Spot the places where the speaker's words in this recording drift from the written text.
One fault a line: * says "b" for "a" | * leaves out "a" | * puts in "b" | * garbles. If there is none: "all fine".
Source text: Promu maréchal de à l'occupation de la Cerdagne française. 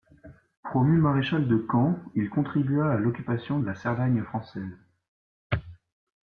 * puts in "camp il contribua"